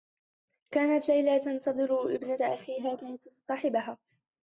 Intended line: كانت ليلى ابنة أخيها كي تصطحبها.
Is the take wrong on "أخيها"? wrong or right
right